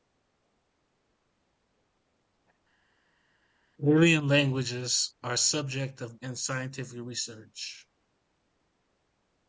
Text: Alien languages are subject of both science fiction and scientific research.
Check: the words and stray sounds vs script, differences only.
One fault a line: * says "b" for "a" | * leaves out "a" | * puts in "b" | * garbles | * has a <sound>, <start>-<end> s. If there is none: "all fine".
* leaves out "both science fiction"